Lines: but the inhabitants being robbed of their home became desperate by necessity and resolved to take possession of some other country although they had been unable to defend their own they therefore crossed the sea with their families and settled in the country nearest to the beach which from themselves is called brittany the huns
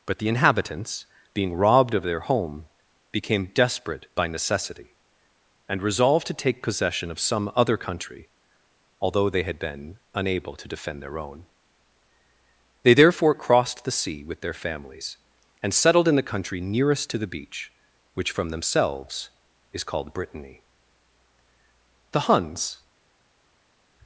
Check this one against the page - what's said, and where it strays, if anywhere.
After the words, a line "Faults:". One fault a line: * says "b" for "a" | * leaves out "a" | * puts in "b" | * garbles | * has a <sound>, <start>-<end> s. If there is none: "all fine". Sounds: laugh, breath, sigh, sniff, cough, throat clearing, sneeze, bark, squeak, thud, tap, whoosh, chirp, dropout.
but the inhabitants being robbed of their home became desperate by necessity and resolved to take possession of some other country although they had been unable to defend their own they therefore crossed the sea with their families and settled in the country nearest to the beach which from themselves is called brittany the huns
Faults:
all fine